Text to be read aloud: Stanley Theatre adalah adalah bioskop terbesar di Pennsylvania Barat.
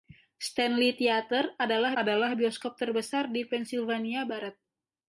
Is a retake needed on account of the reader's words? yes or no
no